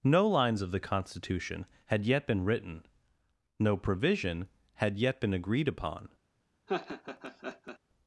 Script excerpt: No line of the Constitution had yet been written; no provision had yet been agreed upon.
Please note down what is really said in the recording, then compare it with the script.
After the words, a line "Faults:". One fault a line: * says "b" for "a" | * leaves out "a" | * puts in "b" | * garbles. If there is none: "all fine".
No lines of the Constitution had yet been written; no provision had yet been agreed upon.
Faults:
* says "lines" for "line"